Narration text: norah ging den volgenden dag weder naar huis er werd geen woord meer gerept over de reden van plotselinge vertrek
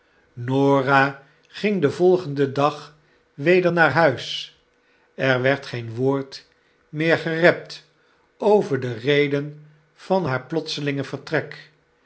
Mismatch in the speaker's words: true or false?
true